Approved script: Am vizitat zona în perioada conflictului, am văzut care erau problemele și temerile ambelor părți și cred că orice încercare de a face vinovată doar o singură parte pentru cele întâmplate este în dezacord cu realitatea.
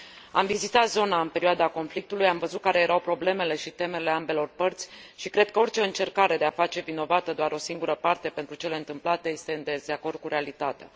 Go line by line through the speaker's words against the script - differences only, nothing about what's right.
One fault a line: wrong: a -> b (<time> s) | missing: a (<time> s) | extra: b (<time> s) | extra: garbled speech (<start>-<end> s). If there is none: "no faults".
no faults